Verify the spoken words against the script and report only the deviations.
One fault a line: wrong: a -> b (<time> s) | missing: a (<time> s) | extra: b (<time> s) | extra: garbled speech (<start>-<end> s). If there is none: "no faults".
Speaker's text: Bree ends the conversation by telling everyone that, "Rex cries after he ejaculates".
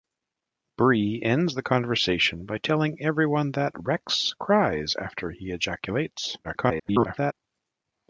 extra: garbled speech (6.4-7.3 s)